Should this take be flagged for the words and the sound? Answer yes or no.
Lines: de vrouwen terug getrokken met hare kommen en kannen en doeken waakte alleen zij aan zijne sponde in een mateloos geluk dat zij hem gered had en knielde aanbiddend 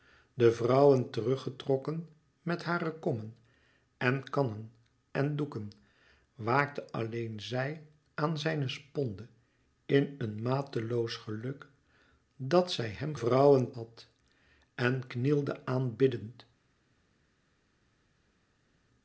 yes